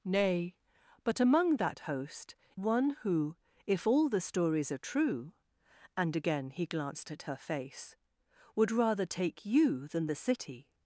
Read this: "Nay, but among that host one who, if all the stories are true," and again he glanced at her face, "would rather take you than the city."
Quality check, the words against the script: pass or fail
pass